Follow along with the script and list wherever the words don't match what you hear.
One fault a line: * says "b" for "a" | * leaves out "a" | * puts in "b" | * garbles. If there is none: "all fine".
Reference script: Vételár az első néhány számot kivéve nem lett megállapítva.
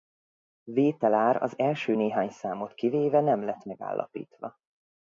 all fine